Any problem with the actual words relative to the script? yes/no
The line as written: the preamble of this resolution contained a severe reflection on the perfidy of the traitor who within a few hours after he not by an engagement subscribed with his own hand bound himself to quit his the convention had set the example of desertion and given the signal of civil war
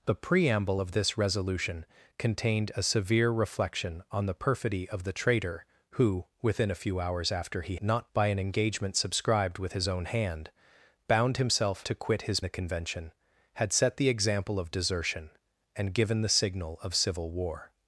no